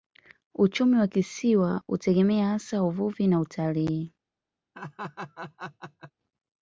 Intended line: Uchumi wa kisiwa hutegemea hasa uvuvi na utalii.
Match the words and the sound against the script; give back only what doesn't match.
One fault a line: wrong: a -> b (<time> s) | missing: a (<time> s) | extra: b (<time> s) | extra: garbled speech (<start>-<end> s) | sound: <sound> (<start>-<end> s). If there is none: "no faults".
sound: laugh (4.7-6.1 s)